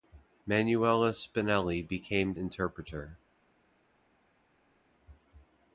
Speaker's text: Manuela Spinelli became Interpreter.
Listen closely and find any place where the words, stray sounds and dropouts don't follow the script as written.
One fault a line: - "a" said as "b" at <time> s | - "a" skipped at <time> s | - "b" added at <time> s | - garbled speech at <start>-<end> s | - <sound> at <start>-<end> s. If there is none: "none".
none